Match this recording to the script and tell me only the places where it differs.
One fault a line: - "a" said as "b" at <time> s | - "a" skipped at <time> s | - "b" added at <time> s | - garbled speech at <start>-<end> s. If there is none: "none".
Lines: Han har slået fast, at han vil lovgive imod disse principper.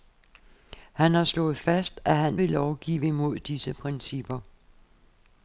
none